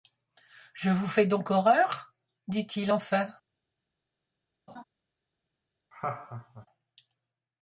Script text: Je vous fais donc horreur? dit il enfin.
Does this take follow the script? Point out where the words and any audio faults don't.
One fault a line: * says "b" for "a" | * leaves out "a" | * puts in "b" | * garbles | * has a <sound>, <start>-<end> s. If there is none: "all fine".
* has a laugh, 4.7-4.8 s
* has a laugh, 5.9-6.7 s